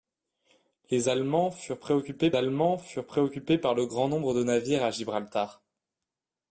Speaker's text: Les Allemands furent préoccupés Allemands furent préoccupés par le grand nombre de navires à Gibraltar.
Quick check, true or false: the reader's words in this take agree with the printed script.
true